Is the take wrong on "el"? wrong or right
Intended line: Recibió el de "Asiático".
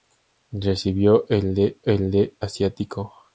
right